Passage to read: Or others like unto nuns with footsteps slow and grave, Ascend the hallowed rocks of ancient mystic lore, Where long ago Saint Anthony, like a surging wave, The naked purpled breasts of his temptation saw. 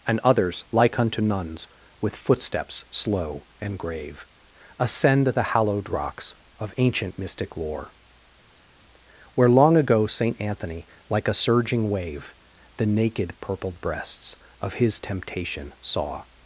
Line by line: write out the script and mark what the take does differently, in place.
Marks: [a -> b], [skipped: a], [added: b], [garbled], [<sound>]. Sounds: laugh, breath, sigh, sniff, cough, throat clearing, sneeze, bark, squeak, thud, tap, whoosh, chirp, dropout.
[Or -> And] others like unto nuns with footsteps slow and grave, Ascend the hallowed rocks of ancient mystic lore, Where long ago Saint Anthony, like a surging wave, The naked purpled breasts of his temptation saw.